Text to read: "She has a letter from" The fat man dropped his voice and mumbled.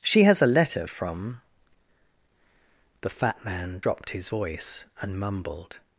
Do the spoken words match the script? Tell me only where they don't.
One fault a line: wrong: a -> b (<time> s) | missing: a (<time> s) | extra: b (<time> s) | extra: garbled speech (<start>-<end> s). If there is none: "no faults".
no faults